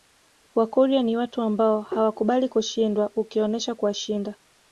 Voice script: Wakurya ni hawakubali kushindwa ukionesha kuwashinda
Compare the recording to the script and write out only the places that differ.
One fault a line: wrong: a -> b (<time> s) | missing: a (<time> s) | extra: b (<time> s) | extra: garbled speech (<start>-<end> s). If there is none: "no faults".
extra: watu ambao (1.2 s)